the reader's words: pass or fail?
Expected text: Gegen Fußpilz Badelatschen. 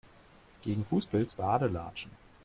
pass